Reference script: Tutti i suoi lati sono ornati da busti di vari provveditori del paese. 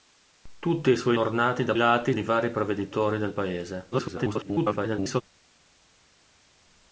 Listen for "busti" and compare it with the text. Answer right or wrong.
wrong